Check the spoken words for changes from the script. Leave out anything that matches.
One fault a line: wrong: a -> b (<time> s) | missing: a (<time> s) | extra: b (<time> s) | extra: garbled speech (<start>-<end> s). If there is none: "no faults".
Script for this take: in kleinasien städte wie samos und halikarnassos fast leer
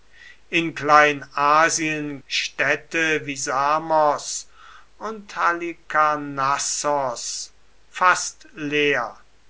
no faults